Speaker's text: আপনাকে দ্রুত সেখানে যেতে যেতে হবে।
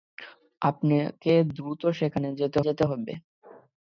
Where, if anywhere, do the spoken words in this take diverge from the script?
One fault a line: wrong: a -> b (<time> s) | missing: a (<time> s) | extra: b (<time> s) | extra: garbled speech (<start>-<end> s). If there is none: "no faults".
no faults